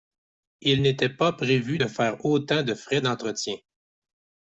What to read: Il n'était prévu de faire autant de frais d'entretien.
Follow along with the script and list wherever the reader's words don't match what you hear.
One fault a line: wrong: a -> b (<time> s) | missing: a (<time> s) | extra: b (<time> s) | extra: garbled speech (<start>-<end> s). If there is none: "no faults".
extra: pas (1.1 s)